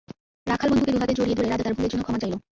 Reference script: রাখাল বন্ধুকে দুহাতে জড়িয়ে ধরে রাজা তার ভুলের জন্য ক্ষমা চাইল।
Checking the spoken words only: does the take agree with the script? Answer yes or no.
yes